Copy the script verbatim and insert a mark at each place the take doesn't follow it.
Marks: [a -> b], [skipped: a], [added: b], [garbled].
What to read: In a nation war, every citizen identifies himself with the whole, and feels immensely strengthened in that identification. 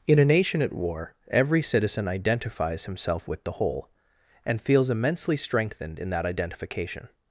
In a nation [added: at] war, every citizen identifies himself with the whole, and feels immensely strengthened in that identification.